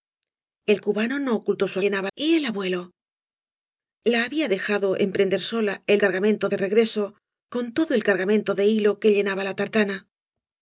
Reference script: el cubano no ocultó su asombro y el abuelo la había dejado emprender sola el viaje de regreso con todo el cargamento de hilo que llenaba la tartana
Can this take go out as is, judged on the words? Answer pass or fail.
fail